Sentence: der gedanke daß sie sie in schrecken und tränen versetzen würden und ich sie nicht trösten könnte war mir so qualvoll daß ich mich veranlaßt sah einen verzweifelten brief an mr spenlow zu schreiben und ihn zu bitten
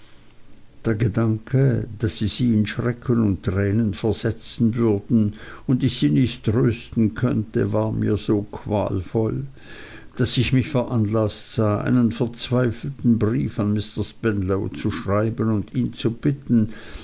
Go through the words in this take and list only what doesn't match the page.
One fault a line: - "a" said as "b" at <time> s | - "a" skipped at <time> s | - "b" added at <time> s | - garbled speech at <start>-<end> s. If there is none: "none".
none